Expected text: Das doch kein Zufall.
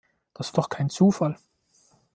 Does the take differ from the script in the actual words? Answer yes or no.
no